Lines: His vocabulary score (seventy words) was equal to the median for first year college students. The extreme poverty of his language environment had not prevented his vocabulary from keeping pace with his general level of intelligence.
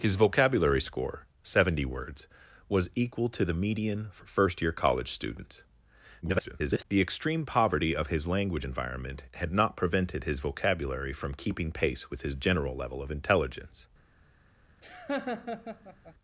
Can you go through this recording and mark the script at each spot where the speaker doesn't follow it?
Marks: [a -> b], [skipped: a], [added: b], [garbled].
His vocabulary score (seventy words) was equal to the median for first year college students. [garbled] The extreme poverty of his language environment had not prevented his vocabulary from keeping pace with his general level of intelligence.